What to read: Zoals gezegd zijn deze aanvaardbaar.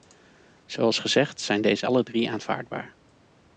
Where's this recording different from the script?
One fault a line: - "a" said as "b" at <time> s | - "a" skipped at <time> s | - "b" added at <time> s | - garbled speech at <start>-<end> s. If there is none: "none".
- "alle drie" added at 1.8 s